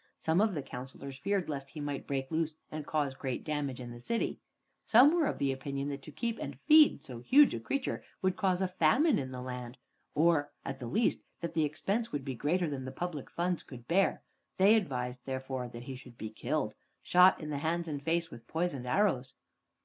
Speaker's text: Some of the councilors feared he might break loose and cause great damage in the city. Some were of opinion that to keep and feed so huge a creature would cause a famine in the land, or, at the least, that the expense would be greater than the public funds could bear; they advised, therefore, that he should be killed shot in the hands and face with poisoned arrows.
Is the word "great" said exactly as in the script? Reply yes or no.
yes